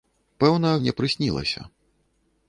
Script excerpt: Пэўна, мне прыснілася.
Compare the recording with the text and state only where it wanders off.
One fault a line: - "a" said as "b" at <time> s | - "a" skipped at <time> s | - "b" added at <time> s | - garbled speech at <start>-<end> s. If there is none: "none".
none